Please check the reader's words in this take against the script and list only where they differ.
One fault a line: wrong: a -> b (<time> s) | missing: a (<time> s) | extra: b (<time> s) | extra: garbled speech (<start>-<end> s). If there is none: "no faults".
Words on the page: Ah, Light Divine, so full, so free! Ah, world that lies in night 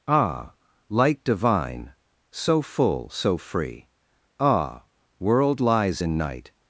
missing: that (5.6 s)